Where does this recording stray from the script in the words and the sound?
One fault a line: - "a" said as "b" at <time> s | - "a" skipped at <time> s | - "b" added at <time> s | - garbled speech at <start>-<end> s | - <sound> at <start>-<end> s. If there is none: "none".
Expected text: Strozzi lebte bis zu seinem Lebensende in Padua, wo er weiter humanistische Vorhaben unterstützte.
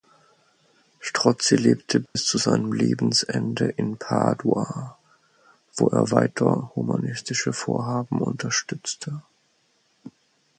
- dropout at 2.1-2.2 s